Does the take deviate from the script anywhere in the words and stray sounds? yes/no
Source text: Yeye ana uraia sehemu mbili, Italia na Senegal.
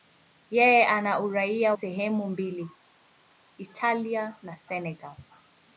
no